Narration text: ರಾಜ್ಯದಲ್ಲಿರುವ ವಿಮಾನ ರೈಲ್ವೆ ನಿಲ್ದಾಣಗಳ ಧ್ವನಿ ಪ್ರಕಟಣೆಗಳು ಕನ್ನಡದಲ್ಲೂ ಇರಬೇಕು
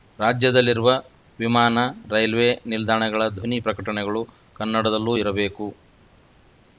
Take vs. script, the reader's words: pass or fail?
pass